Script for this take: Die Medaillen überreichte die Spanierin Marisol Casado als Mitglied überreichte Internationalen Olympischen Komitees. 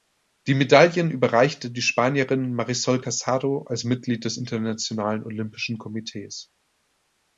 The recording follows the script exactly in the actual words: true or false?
false